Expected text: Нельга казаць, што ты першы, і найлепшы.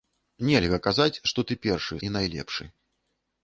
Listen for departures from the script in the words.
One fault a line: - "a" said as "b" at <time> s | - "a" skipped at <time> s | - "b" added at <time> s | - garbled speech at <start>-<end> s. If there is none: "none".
none